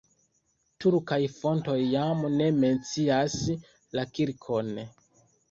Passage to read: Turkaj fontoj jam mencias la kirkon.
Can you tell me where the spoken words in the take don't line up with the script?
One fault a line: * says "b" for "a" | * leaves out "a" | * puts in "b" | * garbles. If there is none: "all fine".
* puts in "ne"